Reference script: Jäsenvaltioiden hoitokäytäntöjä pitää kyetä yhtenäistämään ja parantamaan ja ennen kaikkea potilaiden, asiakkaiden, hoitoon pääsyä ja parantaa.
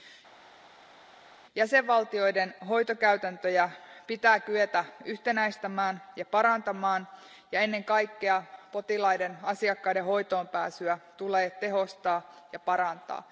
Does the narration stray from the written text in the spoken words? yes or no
yes